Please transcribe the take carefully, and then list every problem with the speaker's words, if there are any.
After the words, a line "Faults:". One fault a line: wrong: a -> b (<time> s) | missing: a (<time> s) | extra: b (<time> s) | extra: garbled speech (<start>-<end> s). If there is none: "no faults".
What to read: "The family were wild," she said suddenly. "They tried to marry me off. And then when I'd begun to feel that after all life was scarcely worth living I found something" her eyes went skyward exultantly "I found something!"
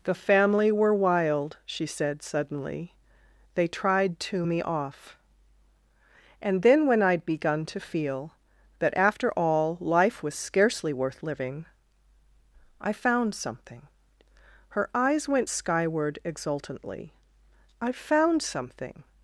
"The family were wild," she said suddenly. "They tried to me off. And then when I'd begun to feel that after all life was scarcely worth living I found something" her eyes went skyward exultantly "I found something!"
Faults:
missing: marry (4.5 s)